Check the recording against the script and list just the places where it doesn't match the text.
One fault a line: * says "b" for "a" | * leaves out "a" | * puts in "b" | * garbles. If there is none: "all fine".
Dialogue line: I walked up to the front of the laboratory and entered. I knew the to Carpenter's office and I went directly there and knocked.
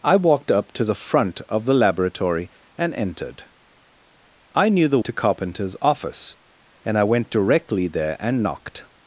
all fine